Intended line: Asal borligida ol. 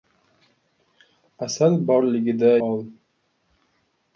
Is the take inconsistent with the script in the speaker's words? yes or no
no